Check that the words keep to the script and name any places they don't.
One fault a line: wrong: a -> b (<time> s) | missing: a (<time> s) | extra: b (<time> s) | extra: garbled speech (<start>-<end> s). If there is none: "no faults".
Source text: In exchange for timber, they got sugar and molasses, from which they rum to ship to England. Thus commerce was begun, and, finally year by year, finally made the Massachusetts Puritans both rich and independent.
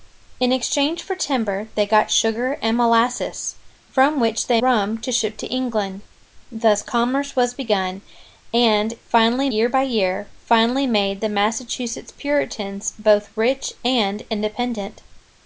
no faults